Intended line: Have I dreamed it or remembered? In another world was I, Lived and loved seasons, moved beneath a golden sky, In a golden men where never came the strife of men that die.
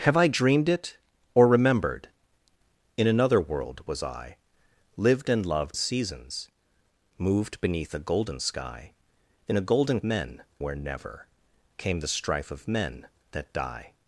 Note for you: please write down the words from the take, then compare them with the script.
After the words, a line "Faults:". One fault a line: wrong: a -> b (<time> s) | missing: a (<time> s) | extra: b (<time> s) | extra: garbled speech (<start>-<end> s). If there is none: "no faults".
Have I dreamed it or remembered? In another world was I, Lived and loved seasons, moved beneath a golden sky, In a golden men where never came the strife of men that die.
Faults:
no faults